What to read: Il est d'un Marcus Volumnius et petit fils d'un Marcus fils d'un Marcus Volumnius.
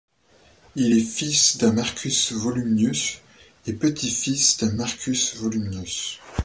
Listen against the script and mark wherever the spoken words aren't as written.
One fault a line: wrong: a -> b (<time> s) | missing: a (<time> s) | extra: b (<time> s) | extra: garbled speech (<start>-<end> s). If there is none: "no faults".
extra: fils (1.0 s)
missing: fils d'un Marcus (5.3 s)